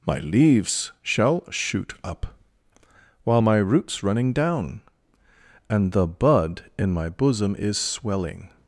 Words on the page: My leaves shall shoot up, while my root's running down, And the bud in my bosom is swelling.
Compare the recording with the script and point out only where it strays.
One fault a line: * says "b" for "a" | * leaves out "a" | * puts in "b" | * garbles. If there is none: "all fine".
all fine